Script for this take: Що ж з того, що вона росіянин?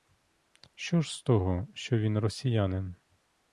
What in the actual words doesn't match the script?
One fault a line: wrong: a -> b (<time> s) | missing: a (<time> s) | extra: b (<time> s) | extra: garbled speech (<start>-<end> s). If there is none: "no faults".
wrong: вона -> він (2.0 s)